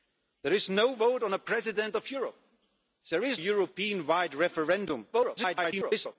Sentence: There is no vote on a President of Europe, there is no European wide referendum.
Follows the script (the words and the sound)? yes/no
no